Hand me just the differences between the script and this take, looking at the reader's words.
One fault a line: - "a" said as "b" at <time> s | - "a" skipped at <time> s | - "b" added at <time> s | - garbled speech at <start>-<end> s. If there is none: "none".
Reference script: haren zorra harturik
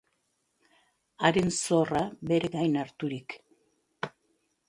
- "bere gain" added at 2.3 s